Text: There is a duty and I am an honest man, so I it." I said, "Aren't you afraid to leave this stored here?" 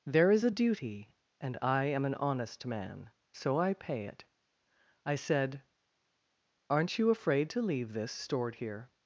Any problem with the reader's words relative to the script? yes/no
yes